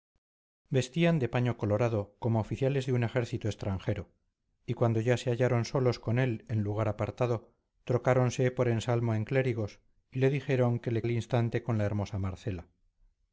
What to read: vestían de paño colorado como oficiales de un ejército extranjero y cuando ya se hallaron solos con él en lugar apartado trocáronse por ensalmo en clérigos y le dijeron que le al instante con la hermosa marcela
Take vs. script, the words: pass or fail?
pass